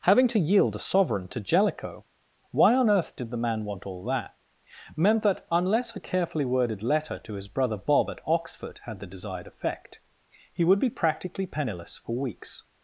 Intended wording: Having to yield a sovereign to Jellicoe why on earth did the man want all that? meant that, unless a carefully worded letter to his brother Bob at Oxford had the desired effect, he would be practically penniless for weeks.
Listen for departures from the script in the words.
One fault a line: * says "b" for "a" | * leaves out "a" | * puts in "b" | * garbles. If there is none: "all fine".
all fine